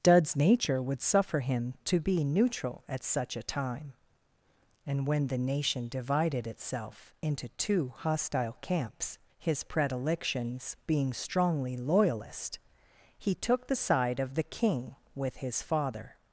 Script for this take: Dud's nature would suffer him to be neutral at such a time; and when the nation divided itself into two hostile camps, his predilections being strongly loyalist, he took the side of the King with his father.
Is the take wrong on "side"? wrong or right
right